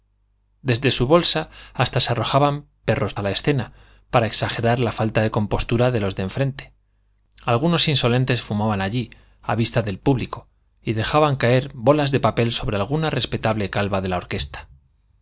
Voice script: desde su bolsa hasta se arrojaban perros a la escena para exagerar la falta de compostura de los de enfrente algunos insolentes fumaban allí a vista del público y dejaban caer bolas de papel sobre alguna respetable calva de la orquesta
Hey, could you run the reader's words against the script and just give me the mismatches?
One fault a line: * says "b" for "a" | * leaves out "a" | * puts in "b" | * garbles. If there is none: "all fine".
all fine